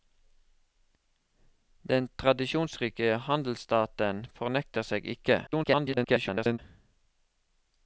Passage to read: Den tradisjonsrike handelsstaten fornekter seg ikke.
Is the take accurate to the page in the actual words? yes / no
no